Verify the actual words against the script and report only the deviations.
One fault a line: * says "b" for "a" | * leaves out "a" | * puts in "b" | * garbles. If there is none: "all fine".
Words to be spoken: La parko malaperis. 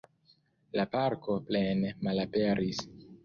* puts in "plene"